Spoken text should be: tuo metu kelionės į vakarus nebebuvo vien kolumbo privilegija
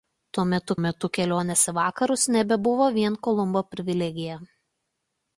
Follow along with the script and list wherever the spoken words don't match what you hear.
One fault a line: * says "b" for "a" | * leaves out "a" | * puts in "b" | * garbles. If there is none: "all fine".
* puts in "metu"